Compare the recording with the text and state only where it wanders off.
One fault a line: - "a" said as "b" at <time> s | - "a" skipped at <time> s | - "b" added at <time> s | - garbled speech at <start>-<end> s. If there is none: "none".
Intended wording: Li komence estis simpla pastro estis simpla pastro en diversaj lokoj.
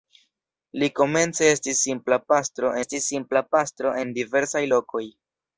none